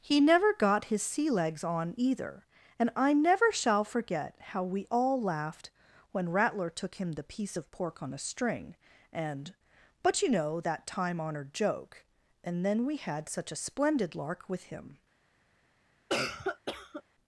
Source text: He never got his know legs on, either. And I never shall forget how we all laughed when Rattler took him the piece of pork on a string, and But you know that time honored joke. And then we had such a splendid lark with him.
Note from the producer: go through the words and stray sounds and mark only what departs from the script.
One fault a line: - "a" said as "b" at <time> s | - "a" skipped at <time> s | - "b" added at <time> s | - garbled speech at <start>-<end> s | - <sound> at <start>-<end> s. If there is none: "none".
- "know" said as "sea" at 1.0 s
- cough at 16.1-17.0 s